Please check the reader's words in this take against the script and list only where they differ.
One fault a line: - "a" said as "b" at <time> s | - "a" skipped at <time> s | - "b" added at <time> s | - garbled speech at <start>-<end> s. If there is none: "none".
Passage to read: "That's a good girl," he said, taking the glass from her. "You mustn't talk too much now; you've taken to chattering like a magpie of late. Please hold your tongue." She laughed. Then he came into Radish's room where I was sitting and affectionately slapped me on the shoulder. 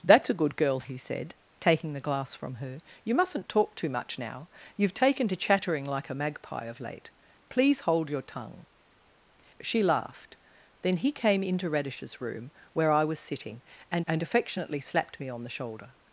- "and" added at 14.1 s